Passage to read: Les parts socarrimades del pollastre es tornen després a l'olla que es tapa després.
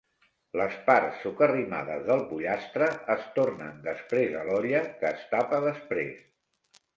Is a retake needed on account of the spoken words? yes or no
no